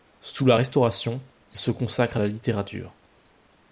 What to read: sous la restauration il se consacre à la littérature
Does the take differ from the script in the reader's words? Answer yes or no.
no